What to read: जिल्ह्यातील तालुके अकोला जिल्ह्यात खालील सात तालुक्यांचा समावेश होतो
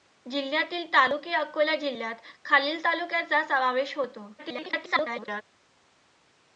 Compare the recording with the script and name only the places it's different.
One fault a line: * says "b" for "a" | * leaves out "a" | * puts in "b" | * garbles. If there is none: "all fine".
* leaves out "सात"
* garbles